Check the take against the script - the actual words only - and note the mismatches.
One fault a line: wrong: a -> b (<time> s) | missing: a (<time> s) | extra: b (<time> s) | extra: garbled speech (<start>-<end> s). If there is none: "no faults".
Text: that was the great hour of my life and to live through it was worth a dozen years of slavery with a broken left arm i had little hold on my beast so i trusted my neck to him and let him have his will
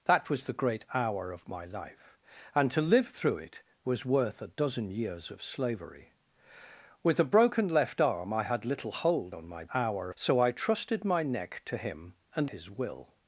wrong: beast -> hour (9.7 s)
missing: let him have (12.5 s)